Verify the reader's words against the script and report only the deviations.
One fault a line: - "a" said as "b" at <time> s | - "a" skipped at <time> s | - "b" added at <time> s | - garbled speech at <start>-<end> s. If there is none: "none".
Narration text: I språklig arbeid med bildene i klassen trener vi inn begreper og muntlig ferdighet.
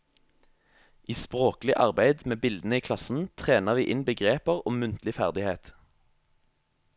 none